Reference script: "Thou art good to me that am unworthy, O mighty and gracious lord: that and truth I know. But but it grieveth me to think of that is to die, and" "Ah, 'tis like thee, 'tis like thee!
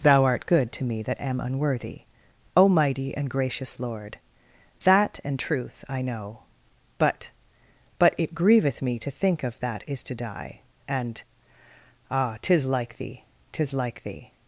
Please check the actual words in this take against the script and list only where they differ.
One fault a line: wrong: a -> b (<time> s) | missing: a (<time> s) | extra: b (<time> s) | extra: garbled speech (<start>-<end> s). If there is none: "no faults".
no faults